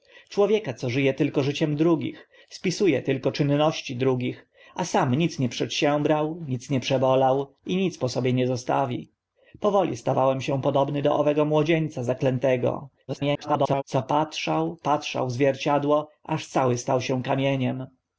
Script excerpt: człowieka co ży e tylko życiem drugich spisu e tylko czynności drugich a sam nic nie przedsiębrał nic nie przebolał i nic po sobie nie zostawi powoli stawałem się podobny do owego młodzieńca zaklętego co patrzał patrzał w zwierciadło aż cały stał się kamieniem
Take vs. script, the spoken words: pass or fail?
fail